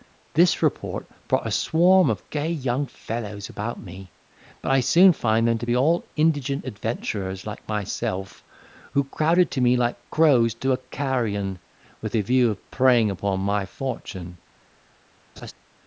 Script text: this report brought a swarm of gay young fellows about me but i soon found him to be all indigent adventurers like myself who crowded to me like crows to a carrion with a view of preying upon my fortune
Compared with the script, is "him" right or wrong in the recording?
wrong